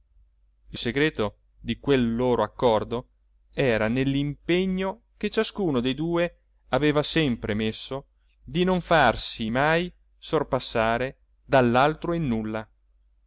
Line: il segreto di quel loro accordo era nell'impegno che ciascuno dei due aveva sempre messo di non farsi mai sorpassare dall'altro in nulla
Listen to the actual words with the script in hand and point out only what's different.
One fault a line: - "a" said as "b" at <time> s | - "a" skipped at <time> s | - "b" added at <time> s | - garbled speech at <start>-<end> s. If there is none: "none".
none